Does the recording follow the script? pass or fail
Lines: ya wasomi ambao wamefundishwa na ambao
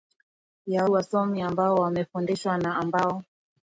pass